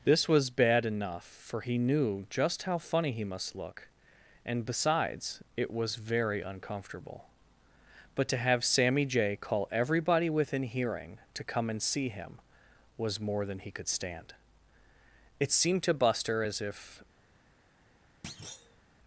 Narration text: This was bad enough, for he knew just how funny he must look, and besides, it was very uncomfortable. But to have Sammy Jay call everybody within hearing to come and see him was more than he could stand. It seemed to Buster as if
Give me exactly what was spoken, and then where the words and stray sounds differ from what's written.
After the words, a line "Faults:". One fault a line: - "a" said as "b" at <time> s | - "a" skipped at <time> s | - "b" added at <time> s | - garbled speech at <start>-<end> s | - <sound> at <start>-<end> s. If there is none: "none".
This was bad enough, for he knew just how funny he must look, and besides, it was very uncomfortable. But to have Sammy Jay call everybody within hearing to come and see him was more than he could stand. It seemed to Buster as if
Faults:
- thud at 18.2-18.8 s